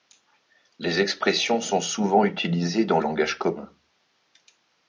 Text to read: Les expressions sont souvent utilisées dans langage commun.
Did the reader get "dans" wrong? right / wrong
right